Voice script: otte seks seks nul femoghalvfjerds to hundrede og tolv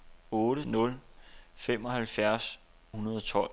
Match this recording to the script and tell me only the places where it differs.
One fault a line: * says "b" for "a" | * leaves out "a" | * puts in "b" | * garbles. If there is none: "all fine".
* leaves out "seks seks"
* leaves out "to"